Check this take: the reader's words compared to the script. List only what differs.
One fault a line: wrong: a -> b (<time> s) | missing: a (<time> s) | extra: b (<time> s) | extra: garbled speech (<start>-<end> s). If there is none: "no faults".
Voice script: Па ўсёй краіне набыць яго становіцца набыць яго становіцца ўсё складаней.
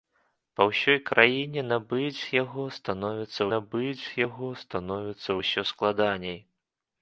no faults